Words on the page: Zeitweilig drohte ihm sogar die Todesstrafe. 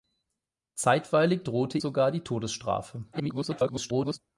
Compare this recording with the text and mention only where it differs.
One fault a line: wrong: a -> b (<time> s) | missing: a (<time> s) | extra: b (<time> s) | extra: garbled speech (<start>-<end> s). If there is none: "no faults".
missing: ihm (1.8 s)
extra: garbled speech (3.1-4.2 s)